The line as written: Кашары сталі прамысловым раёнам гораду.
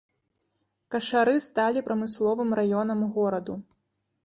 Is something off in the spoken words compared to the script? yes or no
no